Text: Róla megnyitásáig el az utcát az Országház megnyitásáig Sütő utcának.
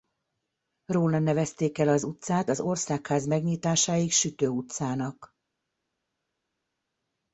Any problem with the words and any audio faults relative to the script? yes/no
yes